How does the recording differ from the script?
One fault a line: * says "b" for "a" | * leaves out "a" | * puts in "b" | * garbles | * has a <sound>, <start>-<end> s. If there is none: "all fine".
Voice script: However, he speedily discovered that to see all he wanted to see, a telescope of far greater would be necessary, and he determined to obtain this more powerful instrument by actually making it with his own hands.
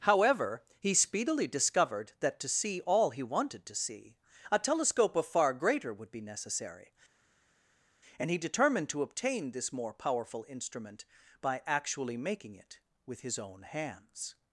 all fine